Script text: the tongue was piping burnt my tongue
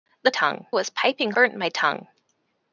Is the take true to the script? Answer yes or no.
yes